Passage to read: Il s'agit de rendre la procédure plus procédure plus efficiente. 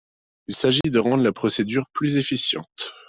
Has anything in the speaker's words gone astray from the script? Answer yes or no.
yes